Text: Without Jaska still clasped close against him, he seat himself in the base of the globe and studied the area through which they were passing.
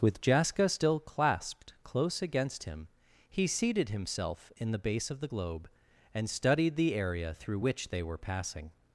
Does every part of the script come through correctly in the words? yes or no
no